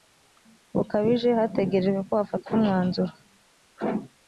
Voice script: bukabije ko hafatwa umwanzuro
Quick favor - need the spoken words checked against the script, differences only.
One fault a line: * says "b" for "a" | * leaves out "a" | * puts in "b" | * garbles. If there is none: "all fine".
* puts in "hategerejwe"